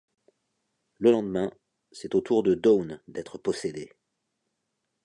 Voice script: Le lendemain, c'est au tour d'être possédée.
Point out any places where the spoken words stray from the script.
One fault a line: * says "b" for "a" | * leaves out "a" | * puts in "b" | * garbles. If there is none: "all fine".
* puts in "de Dawn"